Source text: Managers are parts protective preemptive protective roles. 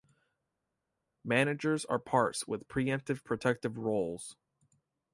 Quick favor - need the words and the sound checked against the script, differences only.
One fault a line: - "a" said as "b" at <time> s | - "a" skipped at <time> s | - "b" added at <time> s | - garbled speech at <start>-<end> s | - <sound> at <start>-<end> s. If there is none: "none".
- "protective" said as "with" at 2.5 s